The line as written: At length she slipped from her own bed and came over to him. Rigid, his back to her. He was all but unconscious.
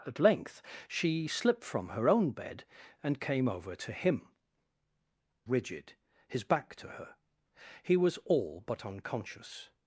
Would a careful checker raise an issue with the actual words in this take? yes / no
no